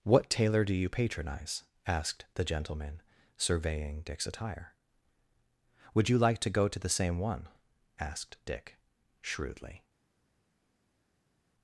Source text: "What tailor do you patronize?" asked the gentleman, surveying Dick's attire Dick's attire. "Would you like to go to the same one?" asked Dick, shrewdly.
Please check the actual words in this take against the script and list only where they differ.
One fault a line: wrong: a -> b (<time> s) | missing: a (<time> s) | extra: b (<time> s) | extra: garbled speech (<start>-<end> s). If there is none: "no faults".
missing: Dick's attire (4.7 s)